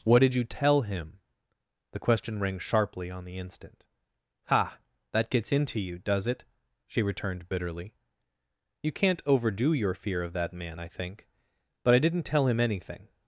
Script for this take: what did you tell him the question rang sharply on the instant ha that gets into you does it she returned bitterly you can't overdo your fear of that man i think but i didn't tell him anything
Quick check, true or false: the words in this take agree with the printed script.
true